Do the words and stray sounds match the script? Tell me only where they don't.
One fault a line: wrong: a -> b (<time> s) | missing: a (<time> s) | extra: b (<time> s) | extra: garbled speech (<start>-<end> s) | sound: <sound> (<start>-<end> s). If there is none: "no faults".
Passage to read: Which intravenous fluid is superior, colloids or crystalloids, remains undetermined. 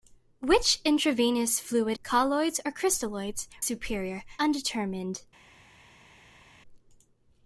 missing: is superior (2.0 s)
wrong: remains -> superior (3.6 s)